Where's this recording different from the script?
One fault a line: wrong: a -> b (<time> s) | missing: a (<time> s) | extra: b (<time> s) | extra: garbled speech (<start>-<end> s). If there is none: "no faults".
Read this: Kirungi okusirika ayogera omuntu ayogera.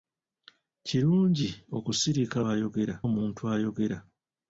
no faults